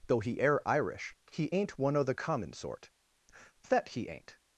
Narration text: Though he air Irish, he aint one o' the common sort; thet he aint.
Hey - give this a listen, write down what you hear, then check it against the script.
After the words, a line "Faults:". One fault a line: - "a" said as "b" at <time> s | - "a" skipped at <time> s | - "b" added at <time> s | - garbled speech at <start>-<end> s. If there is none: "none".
Though he air Irish, he aint one o' the common sort; thet he aint.
Faults:
none